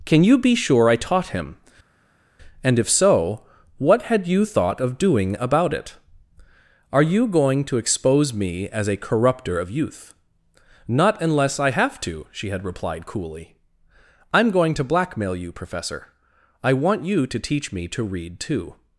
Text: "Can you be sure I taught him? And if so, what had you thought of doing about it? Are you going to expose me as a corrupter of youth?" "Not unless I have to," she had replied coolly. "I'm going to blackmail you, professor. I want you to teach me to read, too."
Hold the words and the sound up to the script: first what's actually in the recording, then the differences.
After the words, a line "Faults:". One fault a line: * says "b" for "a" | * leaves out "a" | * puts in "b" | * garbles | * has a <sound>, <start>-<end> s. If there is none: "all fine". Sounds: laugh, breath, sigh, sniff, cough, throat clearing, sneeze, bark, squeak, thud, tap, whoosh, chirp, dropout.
"Can you be sure I taught him? And if so, what had you thought of doing about it? Are you going to expose me as a corrupter of youth?" "Not unless I have to," she had replied coolly. "I'm going to blackmail you, professor. I want you to teach me to read, too."
Faults:
all fine